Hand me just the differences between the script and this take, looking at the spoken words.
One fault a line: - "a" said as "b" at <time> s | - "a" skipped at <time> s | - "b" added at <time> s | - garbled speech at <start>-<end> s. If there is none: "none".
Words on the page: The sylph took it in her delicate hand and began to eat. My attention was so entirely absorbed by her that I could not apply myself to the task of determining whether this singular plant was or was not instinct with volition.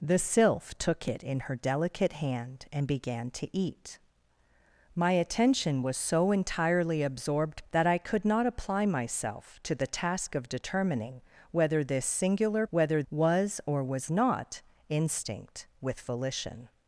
- "by her" skipped at 7.6 s
- "plant" said as "whether" at 12.7 s